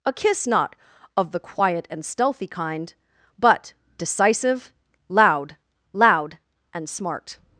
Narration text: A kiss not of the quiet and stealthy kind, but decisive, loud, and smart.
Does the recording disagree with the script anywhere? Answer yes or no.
yes